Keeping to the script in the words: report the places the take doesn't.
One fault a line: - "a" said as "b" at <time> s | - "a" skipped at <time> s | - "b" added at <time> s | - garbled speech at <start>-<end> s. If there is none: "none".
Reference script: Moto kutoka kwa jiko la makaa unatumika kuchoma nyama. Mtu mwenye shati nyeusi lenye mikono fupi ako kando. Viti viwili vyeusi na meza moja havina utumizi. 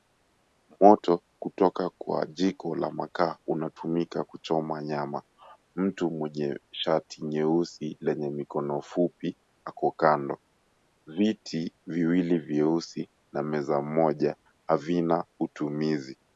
none